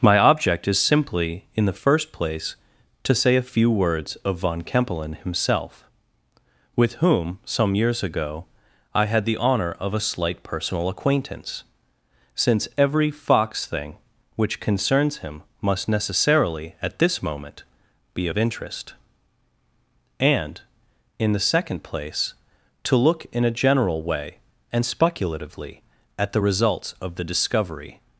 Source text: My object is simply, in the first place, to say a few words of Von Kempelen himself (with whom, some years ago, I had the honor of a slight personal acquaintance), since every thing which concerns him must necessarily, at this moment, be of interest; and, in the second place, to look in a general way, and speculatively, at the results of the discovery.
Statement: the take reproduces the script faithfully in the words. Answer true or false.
false